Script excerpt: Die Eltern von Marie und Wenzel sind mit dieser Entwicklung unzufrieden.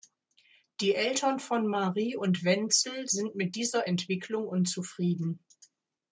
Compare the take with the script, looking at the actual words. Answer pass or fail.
pass